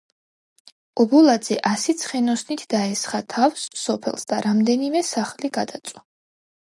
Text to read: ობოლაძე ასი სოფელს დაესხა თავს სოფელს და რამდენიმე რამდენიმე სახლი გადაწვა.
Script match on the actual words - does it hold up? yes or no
no